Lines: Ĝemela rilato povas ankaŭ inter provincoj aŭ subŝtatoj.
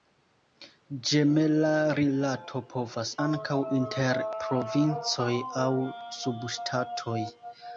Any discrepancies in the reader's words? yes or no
no